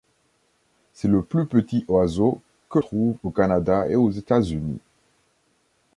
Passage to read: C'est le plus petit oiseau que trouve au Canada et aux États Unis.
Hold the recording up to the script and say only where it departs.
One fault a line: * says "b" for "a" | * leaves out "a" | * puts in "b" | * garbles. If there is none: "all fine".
all fine